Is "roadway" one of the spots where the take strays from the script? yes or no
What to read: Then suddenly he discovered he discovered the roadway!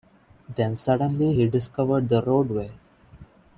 no